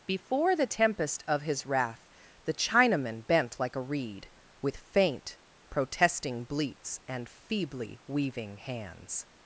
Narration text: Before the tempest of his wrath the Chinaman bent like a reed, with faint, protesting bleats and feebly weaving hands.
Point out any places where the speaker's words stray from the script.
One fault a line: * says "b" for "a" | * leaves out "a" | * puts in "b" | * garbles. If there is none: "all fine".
all fine